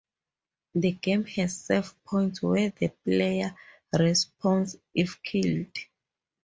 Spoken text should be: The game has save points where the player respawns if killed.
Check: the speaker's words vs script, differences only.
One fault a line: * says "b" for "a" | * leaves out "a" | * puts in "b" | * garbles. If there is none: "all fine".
all fine